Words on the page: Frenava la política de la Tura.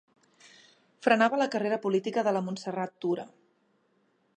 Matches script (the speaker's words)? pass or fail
fail